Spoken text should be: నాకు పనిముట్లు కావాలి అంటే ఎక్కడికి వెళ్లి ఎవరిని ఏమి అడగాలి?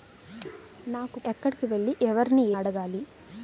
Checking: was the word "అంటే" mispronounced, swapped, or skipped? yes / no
yes